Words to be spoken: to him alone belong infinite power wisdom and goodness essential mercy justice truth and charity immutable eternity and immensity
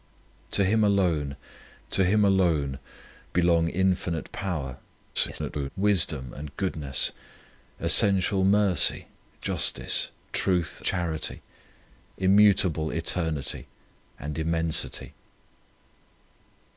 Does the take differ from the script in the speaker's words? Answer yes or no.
yes